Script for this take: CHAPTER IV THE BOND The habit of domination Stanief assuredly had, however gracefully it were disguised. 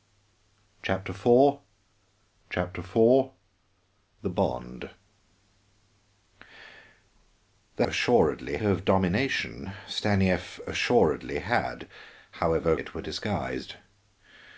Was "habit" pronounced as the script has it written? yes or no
no